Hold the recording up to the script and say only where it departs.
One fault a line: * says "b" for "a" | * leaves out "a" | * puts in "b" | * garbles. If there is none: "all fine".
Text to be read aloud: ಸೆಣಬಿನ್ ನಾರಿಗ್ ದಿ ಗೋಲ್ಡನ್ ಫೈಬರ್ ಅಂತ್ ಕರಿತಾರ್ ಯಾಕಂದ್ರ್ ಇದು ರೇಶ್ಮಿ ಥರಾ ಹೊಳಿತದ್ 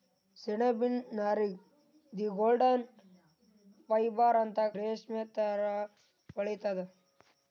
* leaves out "ಕರಿತಾರ್ ಯಾಕಂದ್ರ್ ಇದು"